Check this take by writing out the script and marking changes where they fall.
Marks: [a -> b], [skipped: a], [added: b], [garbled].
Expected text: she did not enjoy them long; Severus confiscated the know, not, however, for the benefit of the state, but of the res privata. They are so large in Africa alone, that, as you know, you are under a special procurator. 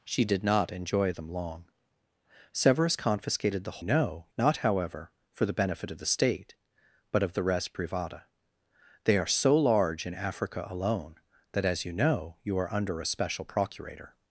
she did not enjoy them long; Severus confiscated the know, not, however, for the benefit of the state, but of the res privata. They are so large in Africa alone, that, as you know, you are under a special procurator.